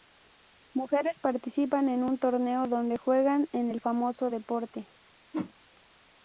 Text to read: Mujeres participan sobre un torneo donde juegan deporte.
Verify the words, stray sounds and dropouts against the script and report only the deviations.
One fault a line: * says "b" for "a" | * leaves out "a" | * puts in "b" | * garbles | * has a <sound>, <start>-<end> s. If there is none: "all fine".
* says "en" for "sobre"
* puts in "en el famoso"
* has a whoosh, 5.3-5.5 s